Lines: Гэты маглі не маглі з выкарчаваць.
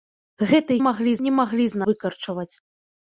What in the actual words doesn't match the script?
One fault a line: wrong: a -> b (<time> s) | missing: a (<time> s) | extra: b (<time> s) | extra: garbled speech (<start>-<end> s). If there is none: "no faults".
no faults